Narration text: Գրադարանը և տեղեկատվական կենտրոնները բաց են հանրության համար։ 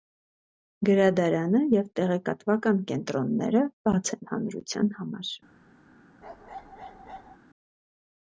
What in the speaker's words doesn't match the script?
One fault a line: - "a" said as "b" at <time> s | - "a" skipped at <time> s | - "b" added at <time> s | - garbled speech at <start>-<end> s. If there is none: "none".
none